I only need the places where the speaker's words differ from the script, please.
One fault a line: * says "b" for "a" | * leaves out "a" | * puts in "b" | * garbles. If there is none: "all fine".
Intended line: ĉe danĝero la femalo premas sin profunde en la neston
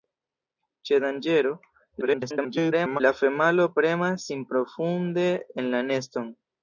* garbles